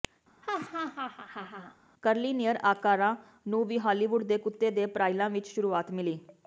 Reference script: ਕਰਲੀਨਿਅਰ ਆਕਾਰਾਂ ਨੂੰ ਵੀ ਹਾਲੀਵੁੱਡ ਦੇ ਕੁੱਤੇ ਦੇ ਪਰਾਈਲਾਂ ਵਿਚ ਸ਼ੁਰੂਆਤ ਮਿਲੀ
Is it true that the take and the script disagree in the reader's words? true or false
false